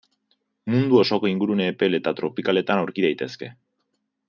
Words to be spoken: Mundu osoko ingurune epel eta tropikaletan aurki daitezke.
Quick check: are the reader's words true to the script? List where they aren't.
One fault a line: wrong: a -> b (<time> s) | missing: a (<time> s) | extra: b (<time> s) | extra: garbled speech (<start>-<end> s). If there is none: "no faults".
no faults